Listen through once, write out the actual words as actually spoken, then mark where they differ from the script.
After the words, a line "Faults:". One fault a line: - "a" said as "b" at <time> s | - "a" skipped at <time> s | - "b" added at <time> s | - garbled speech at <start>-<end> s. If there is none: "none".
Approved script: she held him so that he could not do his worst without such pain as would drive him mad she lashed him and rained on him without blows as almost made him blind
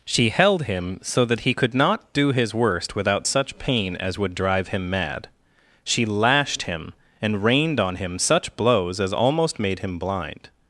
she held him so that he could not do his worst without such pain as would drive him mad she lashed him and rained on him such blows as almost made him blind
Faults:
- "without" said as "such" at 8.2 s